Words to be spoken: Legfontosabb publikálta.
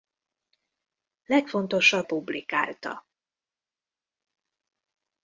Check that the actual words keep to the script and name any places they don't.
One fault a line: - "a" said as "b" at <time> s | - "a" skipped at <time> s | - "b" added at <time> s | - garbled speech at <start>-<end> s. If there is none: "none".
none